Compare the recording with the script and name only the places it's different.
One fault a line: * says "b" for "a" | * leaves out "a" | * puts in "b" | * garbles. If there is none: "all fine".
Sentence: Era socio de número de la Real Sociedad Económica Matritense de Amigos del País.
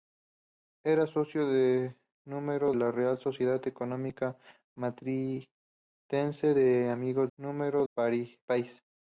* leaves out "de"
* says "número" for "del"